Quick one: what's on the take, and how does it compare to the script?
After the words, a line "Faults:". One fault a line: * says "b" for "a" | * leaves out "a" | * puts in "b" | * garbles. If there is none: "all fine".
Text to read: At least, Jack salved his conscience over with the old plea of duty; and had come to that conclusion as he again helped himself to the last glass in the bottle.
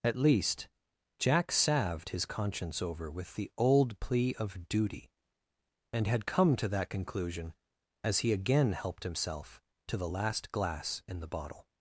At least, Jack salved his conscience over with the old plea of duty; and had come to that conclusion as he again helped himself to the last glass in the bottle.
Faults:
all fine